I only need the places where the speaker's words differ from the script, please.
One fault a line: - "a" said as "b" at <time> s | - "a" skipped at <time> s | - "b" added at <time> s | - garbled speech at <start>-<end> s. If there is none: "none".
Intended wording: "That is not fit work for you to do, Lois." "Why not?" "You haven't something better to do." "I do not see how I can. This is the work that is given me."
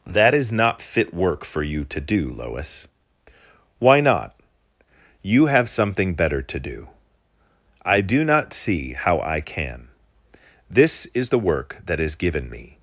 - "haven't" said as "have" at 5.5 s